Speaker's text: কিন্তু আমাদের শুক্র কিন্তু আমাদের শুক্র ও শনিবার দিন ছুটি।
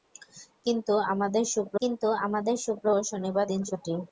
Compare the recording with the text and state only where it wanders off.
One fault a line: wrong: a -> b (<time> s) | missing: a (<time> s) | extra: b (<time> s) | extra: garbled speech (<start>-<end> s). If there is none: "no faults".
no faults